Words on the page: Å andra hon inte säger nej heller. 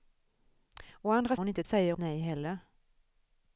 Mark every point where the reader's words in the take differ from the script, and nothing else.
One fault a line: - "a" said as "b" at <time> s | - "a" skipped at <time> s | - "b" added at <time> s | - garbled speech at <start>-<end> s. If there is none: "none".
none